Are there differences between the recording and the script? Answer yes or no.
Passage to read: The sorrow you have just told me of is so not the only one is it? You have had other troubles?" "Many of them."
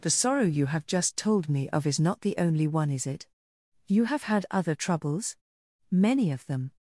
yes